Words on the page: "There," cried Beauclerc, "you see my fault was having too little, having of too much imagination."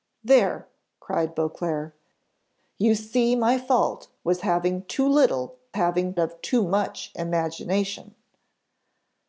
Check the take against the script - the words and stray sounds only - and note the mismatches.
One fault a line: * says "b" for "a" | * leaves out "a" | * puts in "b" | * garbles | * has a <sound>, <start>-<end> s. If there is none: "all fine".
all fine